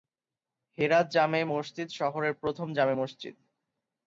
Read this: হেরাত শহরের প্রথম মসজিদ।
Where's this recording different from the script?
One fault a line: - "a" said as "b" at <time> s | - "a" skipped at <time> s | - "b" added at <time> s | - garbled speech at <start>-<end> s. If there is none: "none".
- "জামে মসজিদ" added at 1.1 s
- "জামে" added at 2.7 s